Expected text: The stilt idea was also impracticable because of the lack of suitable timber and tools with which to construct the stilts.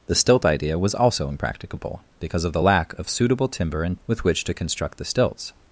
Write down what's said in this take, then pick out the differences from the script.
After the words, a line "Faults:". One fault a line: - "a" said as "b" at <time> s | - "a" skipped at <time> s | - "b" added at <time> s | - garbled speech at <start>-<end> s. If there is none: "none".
The stilt idea was also impracticable because of the lack of suitable timber and with which to construct the stilts.
Faults:
- "tools" skipped at 4.0 s